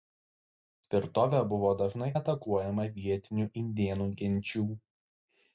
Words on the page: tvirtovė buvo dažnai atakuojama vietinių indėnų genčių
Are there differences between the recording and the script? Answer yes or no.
no